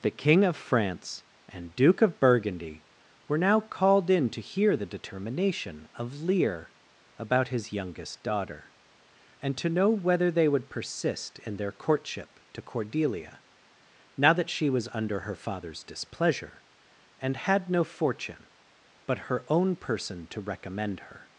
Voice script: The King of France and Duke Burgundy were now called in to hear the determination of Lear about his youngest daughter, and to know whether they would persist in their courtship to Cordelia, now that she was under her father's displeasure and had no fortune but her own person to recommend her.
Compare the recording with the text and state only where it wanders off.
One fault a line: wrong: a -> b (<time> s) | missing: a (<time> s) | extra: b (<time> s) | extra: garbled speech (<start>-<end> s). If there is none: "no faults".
extra: of (2.0 s)